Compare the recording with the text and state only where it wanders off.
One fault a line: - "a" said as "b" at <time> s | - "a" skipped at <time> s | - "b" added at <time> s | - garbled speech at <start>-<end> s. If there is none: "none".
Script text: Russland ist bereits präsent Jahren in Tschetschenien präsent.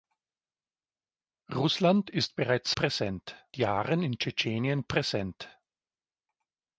none